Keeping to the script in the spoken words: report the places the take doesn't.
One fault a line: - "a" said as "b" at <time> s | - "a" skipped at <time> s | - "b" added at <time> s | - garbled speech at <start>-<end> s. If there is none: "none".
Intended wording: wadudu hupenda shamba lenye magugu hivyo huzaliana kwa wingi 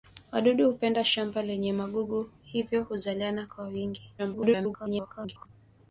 - garbled speech at 4.2-5.5 s